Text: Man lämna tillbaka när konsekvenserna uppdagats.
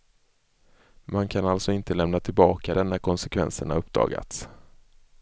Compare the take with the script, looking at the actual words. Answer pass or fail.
fail